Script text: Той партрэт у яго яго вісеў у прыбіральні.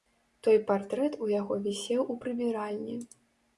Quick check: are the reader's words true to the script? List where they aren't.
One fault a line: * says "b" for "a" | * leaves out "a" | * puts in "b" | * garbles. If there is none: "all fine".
* leaves out "яго"